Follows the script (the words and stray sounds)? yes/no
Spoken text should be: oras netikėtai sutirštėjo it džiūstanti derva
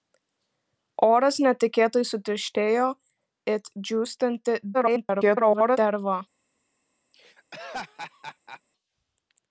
no